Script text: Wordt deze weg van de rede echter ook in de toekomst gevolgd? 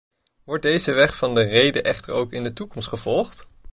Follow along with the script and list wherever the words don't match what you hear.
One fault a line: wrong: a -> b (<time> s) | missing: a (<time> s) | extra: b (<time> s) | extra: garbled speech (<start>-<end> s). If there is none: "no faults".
no faults